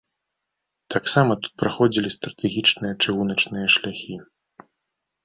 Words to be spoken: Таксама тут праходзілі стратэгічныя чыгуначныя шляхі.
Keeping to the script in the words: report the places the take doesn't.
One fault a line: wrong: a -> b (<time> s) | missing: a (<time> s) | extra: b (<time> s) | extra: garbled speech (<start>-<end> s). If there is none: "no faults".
no faults